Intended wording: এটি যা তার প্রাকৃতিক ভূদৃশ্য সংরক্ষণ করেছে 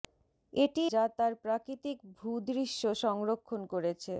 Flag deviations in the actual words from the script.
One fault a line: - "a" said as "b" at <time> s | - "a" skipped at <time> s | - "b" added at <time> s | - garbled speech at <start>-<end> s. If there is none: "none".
none